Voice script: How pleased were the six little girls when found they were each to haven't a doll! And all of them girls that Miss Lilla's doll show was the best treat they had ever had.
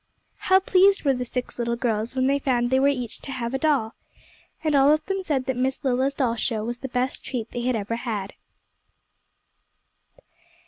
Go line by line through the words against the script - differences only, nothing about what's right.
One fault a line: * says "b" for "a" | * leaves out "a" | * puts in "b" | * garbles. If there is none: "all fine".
* puts in "they"
* says "have" for "haven't"
* says "said" for "girls"